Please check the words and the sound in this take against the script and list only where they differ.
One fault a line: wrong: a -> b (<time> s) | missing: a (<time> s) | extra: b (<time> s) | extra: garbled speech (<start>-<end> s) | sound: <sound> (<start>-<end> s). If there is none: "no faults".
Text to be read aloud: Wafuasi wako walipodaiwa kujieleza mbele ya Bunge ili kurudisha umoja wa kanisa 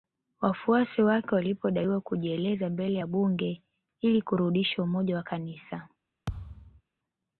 wrong: wako -> wake (1.0 s)
sound: thud (6.3-6.8 s)